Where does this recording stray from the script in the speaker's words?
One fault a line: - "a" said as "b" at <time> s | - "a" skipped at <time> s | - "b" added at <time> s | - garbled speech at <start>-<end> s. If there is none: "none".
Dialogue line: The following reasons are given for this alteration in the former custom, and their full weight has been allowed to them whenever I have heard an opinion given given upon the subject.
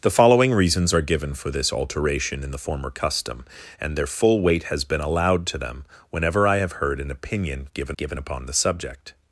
none